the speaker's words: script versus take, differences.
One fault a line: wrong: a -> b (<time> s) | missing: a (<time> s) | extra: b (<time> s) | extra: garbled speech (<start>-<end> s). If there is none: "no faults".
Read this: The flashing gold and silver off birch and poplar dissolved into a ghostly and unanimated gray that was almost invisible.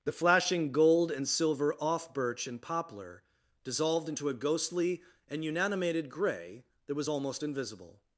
no faults